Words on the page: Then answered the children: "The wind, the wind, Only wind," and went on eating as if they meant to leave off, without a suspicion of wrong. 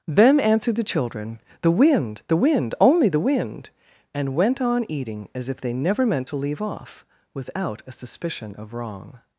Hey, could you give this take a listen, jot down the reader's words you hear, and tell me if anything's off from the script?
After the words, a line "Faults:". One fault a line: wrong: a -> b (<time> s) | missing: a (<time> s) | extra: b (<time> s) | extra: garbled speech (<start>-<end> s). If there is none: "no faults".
Then answered the children: "The wind, the wind, Only the wind," and went on eating as if they never meant to leave off, without a suspicion of wrong.
Faults:
extra: the (3.1 s)
extra: never (5.7 s)